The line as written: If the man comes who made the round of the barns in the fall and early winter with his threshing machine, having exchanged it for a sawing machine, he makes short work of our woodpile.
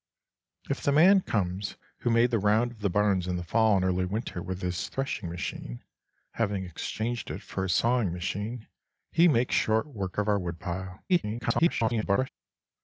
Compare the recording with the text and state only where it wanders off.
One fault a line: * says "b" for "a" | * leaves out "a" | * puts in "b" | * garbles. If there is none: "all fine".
* garbles